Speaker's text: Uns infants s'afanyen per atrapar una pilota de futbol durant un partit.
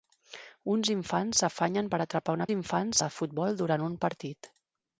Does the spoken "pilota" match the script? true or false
false